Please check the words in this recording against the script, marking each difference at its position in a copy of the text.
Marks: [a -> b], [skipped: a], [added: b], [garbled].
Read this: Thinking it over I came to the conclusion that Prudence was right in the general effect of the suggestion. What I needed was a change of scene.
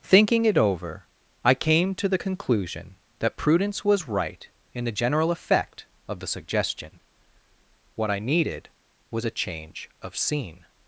Thinking it over I came to the conclusion that Prudence was right in the general effect of the suggestion. What I needed was a change of scene.